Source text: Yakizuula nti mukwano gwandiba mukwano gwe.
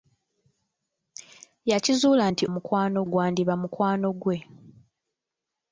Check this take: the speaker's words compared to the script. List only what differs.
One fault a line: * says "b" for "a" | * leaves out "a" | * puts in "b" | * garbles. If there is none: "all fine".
all fine